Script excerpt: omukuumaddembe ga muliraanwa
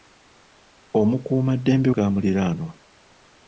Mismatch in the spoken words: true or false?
false